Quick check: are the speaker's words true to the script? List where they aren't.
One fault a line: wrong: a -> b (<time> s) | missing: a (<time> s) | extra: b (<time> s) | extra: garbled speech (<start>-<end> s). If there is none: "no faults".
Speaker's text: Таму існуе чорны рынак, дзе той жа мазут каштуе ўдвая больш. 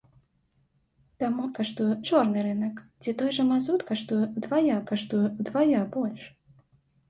wrong: існуе -> каштуе (1.6 s)
extra: каштуе ўдвая (4.9 s)